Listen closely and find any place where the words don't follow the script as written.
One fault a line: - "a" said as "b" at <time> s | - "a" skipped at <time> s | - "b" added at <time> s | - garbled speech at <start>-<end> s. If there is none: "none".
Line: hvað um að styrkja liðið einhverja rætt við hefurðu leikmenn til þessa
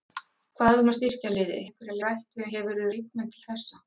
none